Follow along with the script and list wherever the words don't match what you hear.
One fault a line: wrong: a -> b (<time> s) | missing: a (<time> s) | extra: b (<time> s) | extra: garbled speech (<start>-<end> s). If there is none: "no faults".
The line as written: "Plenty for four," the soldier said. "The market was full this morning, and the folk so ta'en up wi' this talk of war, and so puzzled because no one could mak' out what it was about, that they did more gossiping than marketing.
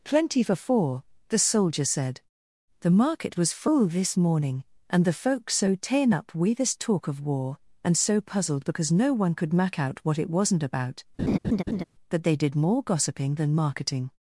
wrong: was -> wasn't (10.3 s)